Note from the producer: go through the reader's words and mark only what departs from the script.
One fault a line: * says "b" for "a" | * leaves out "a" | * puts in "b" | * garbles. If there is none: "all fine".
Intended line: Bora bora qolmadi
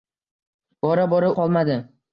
all fine